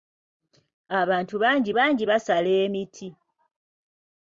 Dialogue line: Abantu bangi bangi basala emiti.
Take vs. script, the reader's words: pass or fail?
pass